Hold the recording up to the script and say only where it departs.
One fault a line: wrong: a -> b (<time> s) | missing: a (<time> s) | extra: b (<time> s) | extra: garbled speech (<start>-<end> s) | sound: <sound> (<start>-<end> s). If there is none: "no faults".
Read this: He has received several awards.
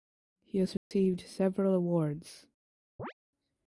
sound: dropout (0.8-0.9 s)
sound: chirp (3.0-3.1 s)